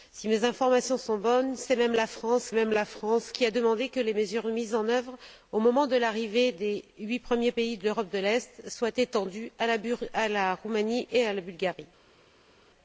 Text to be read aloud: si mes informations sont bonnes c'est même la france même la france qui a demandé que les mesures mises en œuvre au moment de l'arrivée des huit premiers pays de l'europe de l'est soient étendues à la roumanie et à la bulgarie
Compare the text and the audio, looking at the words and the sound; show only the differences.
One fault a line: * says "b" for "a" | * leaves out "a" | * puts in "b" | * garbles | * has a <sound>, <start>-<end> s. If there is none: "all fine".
all fine